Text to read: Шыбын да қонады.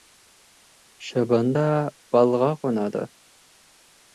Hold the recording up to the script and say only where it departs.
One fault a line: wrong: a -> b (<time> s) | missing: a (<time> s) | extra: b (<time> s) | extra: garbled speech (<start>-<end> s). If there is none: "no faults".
extra: балға (2.2 s)